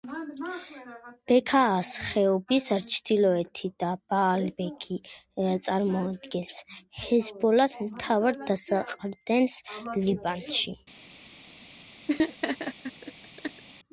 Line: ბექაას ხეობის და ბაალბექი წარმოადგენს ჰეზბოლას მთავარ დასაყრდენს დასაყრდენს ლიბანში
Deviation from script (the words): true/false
true